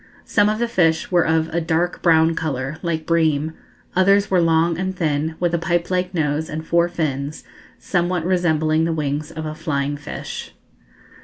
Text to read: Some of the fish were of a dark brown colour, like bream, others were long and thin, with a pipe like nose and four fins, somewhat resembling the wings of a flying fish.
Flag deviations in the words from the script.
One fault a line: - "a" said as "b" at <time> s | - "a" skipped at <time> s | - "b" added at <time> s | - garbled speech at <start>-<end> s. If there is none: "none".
none